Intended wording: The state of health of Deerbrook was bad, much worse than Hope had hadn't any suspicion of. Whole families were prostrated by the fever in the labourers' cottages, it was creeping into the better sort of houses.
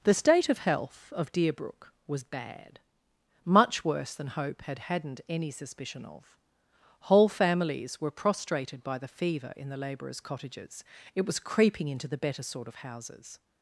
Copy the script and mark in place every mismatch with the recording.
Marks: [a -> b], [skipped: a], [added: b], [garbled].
The state of health of Deerbrook was bad, much worse than Hope had hadn't any suspicion of. Whole families were prostrated by the fever in the labourers' cottages, it was creeping into the better sort of houses.